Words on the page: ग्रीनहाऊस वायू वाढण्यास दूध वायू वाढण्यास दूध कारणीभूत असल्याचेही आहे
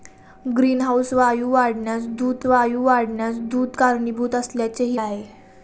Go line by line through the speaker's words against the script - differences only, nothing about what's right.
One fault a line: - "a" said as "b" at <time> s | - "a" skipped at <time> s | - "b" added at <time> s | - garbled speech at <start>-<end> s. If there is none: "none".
none